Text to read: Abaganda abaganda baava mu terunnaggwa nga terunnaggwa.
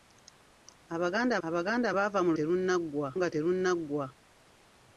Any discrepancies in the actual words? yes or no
no